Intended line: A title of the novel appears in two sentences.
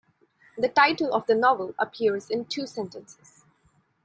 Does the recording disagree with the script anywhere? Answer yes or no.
yes